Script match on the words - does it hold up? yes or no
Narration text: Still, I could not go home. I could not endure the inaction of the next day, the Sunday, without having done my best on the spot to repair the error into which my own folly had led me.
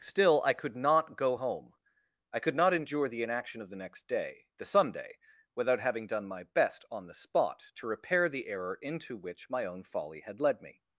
yes